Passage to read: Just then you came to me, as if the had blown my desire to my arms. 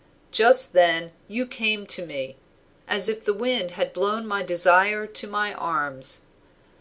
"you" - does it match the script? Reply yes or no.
yes